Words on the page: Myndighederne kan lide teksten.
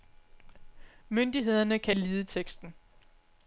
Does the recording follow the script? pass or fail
pass